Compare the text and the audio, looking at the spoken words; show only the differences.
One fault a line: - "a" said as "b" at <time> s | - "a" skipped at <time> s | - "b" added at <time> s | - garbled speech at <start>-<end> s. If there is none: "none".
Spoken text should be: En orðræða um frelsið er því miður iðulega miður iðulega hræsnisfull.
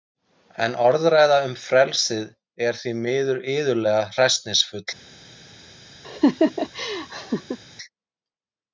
- "miður iðulega" skipped at 4.0 s